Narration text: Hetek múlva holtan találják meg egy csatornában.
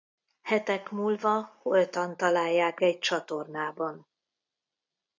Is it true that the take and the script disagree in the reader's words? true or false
true